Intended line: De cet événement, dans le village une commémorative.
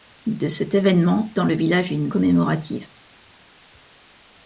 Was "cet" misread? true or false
false